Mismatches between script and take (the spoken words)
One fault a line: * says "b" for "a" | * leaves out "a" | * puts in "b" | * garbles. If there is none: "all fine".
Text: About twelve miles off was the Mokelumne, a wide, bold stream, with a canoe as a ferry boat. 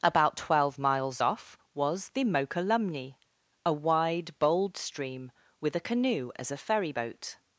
all fine